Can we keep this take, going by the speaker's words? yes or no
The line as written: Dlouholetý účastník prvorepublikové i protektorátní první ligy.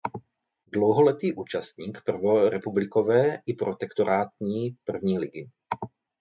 yes